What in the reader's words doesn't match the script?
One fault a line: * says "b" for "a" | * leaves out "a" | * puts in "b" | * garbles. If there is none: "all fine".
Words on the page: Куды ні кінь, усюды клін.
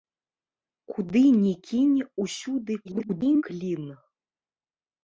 * garbles